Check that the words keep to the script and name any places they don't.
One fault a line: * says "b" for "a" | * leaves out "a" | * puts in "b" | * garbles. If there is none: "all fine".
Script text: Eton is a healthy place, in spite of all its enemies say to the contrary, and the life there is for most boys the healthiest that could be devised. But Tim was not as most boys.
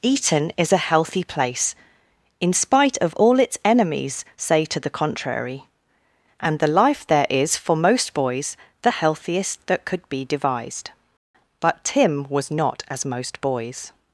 all fine